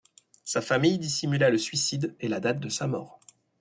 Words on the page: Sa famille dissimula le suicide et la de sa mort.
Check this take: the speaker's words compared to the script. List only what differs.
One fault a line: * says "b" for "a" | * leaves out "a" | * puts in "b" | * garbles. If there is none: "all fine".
* puts in "date"